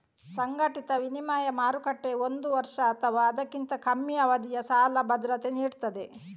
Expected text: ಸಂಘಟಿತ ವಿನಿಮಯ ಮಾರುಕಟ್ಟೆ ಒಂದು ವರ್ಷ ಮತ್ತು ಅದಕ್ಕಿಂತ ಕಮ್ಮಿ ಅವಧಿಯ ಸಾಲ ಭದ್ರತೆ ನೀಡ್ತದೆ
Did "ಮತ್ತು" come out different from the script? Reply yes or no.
yes